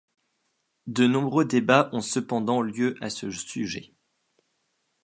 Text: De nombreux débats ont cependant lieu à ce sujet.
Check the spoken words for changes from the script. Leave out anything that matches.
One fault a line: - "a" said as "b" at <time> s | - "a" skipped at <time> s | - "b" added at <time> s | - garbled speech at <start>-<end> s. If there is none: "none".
none